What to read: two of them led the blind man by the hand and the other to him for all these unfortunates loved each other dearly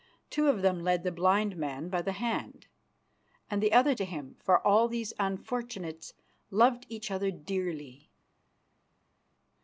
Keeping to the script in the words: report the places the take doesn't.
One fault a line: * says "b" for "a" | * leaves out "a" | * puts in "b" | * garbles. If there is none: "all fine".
all fine